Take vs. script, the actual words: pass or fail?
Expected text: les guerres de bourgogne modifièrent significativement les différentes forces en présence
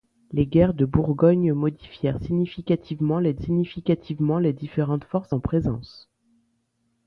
fail